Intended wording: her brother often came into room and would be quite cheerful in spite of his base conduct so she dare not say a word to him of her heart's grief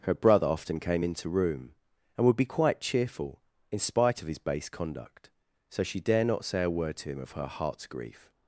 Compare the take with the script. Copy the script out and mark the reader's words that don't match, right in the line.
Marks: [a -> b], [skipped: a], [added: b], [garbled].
her brother often came into room and would be quite cheerful in spite of his base conduct so she dare not say a word to him of her heart's grief